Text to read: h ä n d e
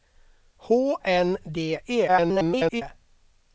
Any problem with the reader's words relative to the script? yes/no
yes